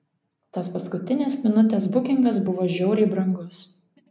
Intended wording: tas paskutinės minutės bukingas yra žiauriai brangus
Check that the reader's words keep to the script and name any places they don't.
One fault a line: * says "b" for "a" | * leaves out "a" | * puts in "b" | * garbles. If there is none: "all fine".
* says "buvo" for "yra"